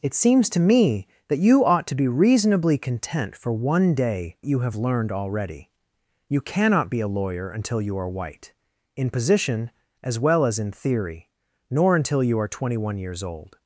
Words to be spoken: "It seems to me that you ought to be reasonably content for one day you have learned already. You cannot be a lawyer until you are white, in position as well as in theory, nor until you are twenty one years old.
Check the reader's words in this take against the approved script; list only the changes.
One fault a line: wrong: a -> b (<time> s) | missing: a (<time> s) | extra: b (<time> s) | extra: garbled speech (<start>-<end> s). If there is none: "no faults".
no faults